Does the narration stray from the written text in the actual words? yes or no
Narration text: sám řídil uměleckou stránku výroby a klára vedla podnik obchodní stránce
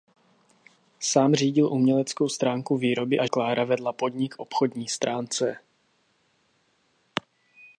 no